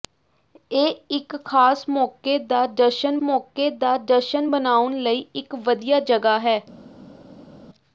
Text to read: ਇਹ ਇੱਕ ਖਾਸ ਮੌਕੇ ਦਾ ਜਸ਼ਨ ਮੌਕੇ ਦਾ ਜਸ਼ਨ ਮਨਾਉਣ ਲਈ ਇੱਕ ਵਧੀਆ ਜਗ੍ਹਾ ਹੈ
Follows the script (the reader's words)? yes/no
yes